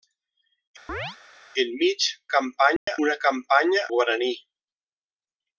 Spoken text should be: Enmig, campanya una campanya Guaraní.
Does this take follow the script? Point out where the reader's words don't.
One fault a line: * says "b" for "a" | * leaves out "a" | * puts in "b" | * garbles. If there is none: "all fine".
all fine